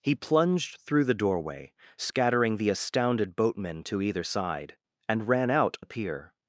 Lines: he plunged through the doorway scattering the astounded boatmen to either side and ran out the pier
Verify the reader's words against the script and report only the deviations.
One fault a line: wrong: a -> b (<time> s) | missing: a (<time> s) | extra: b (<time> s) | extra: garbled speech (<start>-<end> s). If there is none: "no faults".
no faults